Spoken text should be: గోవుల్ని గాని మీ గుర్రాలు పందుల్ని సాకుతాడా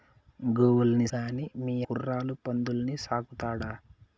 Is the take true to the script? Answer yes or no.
yes